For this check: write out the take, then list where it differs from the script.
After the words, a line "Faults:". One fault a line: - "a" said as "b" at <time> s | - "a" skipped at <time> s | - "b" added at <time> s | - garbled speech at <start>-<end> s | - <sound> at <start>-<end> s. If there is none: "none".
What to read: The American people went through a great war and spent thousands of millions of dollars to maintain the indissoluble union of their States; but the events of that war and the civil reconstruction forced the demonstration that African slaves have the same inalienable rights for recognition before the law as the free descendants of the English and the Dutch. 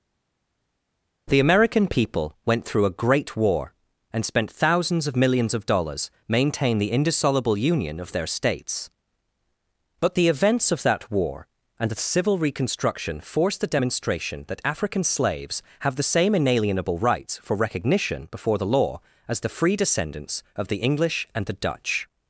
The American people went through a great war and spent thousands of millions of dollars maintain the indissoluble union of their States; but the events of that war and the civil reconstruction forced the demonstration that African slaves have the same inalienable rights for recognition before the law as the free descendants of the English and the Dutch.
Faults:
- "to" skipped at 6.1 s